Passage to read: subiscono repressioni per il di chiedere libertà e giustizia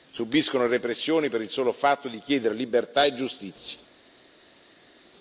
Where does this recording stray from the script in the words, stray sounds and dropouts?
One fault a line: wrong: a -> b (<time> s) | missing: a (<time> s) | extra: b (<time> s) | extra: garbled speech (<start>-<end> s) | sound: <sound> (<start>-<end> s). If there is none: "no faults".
extra: solo fatto (1.5 s)